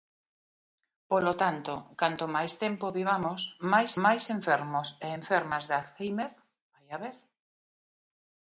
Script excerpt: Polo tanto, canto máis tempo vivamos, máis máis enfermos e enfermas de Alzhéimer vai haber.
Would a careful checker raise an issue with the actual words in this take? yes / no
no